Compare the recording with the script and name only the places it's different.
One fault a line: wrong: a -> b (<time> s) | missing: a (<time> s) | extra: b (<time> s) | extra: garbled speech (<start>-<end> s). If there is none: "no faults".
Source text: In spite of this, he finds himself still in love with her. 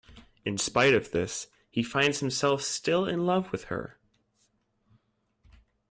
no faults